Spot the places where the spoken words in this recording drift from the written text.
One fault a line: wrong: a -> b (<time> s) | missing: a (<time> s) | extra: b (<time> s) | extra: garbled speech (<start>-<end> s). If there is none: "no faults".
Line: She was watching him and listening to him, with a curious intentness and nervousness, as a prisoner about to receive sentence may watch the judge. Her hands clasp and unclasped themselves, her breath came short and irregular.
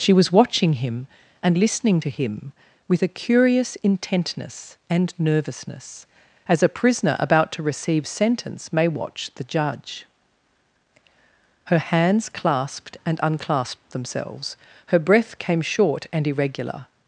wrong: clasp -> clasped (12.3 s)